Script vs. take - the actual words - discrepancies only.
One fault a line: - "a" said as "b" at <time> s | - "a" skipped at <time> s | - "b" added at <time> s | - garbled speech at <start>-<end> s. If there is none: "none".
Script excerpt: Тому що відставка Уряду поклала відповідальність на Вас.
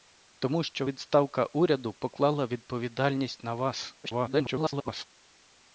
- garbled speech at 4.0-5.0 s